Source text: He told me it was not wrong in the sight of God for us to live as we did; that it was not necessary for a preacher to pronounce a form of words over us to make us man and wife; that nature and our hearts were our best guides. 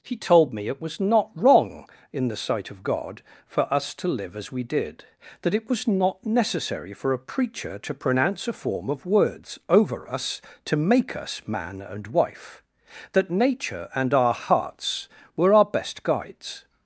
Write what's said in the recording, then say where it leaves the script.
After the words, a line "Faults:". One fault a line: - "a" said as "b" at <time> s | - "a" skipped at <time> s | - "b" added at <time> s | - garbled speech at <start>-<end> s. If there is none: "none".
He told me it was not wrong in the sight of God for us to live as we did; that it was not necessary for a preacher to pronounce a form of words over us to make us man and wife; that nature and our hearts were our best guides.
Faults:
none